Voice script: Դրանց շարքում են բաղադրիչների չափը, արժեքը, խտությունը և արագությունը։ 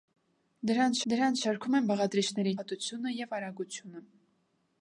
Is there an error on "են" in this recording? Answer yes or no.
no